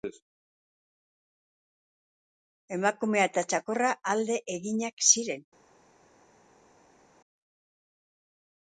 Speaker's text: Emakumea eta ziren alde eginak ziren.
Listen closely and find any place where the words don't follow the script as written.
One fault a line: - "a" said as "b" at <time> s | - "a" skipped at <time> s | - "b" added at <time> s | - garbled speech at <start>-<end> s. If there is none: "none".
- "ziren" said as "txakurra" at 3.5 s